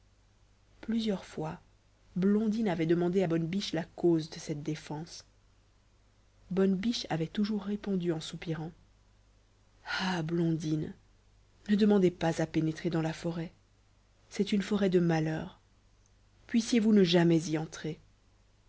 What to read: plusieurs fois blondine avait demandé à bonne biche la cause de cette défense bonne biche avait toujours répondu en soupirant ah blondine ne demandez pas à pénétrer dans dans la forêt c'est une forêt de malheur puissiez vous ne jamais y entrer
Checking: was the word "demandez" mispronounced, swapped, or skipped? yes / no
no